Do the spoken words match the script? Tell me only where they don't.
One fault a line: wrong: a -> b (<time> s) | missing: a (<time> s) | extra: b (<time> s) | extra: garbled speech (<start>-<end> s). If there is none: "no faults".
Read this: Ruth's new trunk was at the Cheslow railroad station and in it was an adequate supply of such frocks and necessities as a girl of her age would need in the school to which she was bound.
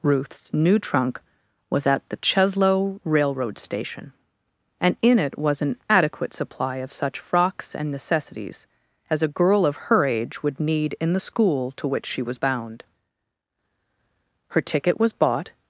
extra: Her ticket was bought (14.5 s)